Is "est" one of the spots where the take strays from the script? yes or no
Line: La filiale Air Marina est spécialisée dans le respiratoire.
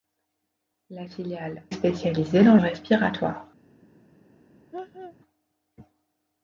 yes